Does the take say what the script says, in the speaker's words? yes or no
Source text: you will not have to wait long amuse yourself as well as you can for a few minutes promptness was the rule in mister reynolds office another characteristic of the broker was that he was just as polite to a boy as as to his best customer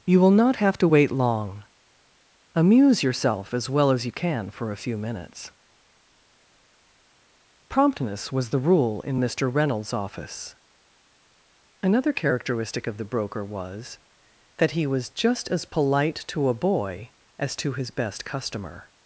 no